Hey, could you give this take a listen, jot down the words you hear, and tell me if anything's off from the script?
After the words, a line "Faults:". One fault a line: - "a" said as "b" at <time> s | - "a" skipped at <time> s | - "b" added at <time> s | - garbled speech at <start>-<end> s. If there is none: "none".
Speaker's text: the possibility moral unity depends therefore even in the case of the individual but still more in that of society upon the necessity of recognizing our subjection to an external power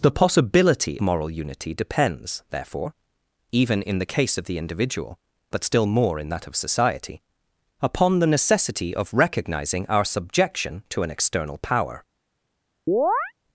the possibility moral unity depends therefore even in the case of the individual but still more in that of society upon the necessity of recognizing our subjection to an external power
Faults:
none